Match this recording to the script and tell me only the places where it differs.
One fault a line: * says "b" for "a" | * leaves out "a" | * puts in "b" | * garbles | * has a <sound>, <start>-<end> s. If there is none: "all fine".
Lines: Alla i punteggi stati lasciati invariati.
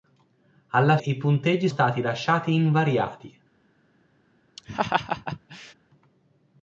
* has a laugh, 4.6-5.7 s